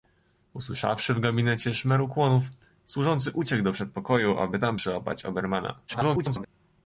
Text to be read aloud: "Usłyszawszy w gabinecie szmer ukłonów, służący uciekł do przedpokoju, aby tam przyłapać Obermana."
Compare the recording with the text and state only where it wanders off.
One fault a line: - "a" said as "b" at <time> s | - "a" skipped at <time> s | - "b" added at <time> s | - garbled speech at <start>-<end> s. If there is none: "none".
- garbled speech at 5.9-6.5 s